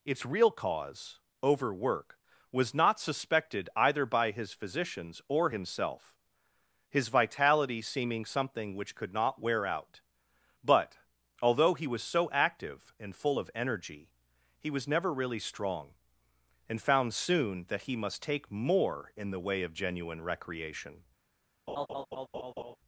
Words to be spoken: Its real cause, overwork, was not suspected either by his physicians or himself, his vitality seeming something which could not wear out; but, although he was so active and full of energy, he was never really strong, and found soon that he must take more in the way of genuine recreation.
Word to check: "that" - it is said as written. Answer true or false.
true